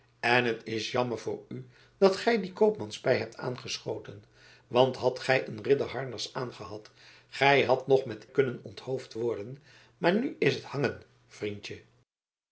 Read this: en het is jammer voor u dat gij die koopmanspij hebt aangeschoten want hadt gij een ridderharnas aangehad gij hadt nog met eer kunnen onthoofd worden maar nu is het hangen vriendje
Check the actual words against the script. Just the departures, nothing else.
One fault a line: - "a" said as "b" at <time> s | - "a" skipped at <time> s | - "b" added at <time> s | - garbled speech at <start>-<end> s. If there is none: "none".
- "eer" skipped at 8.3 s